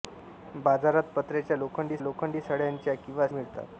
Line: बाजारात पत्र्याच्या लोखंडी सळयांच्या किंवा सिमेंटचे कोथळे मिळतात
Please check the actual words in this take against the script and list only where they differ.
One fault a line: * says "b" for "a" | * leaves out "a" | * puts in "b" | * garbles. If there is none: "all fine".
* puts in "लोखंडी"
* leaves out "सिमेंटचे कोथळे"